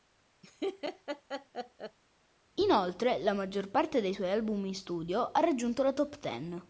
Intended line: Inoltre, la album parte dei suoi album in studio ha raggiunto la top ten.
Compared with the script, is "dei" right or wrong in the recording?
right